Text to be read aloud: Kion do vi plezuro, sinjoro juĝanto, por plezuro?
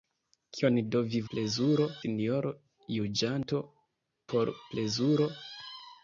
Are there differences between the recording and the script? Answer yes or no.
no